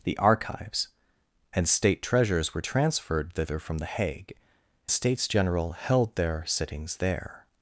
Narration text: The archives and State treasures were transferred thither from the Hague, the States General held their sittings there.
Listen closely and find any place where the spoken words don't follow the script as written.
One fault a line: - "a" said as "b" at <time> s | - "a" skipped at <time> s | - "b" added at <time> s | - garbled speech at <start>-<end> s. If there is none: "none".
none